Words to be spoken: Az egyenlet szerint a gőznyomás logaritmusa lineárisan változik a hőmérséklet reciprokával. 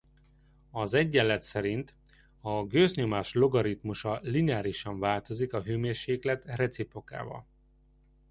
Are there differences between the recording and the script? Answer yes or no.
no